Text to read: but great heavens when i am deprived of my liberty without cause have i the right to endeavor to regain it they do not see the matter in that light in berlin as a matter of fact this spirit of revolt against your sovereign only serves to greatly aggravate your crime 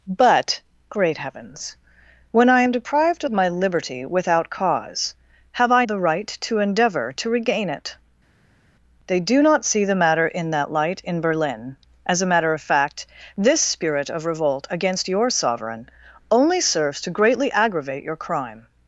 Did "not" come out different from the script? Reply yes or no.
no